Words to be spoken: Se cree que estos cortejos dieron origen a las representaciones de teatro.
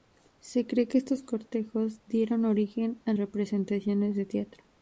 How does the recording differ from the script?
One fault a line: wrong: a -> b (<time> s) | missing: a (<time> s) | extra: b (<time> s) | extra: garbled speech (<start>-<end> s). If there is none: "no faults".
missing: las (3.1 s)